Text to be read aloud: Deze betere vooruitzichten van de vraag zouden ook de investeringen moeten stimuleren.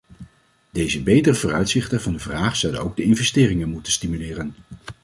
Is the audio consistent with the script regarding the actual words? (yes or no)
yes